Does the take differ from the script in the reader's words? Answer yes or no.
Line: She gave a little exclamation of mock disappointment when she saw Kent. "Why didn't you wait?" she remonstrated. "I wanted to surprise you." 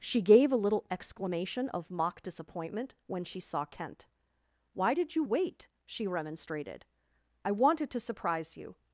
yes